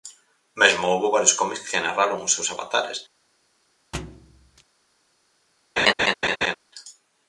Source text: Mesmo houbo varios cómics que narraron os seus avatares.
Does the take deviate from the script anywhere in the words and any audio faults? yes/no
yes